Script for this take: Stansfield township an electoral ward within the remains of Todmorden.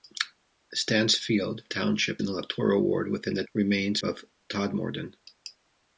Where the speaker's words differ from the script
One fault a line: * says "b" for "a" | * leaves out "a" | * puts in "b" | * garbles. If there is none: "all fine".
all fine